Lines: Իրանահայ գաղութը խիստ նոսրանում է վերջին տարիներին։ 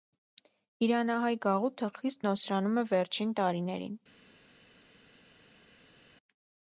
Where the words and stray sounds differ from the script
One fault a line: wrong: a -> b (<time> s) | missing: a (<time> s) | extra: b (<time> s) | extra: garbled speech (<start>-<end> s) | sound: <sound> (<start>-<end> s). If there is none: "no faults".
no faults